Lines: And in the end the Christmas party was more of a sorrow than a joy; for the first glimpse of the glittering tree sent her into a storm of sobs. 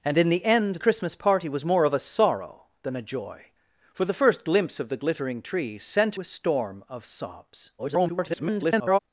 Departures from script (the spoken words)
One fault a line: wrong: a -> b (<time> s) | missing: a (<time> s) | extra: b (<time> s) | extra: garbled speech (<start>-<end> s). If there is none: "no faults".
missing: the (0.8 s)
missing: her into (6.2 s)
extra: garbled speech (7.8-9.0 s)